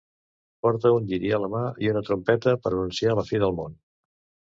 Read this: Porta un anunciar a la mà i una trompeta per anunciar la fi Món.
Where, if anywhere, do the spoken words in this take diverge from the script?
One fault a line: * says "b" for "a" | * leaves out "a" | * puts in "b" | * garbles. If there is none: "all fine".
* says "lliri" for "anunciar"
* puts in "del"